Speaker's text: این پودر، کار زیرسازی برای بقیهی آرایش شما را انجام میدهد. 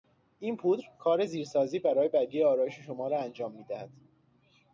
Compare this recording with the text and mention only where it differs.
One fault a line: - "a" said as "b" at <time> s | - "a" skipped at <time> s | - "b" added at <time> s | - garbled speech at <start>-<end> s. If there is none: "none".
none